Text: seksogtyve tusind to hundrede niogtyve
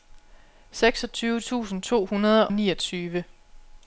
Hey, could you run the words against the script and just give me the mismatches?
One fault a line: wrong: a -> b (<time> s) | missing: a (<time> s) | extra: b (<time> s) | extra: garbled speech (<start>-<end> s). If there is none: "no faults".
no faults